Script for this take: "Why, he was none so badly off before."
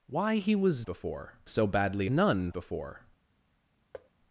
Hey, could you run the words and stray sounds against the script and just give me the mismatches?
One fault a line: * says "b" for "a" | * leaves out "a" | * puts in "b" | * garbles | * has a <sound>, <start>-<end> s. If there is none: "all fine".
* says "before" for "none"
* says "none" for "off"
* has a thud, 3.9-4.1 s